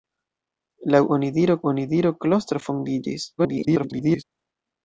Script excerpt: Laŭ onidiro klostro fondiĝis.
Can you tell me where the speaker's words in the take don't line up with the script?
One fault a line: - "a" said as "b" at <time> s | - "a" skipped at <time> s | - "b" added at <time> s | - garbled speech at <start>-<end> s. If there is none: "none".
- "onidiro" added at 1.7 s
- garbled speech at 3.4-4.2 s